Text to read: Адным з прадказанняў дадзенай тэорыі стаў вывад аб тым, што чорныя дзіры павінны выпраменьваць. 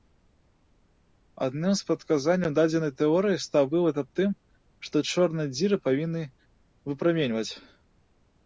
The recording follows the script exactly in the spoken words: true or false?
true